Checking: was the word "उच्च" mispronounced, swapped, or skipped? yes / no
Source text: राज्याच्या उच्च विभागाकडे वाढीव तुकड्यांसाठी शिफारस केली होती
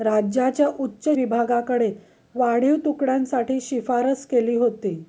no